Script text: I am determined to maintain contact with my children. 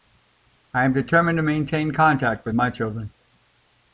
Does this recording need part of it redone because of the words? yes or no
no